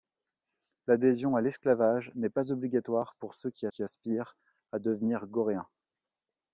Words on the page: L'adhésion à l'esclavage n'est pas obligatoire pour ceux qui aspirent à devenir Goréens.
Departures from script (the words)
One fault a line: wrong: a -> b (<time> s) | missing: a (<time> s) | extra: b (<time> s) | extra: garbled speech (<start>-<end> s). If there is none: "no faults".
extra: qui (3.7 s)